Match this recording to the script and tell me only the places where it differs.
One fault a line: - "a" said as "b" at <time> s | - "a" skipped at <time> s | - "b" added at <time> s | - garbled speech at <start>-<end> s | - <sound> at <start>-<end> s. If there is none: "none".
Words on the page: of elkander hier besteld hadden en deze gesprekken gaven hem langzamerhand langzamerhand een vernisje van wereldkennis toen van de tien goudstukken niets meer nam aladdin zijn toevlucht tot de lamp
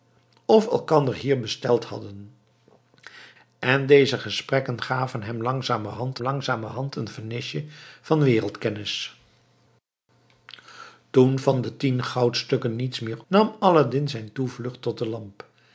none